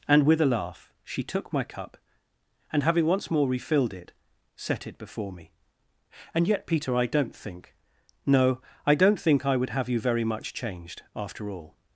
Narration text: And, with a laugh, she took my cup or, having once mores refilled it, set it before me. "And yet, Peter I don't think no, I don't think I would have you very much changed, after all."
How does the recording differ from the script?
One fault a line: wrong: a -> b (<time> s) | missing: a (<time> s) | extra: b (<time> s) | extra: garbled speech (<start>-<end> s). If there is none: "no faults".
wrong: or -> and (2.7 s)
wrong: mores -> more (3.3 s)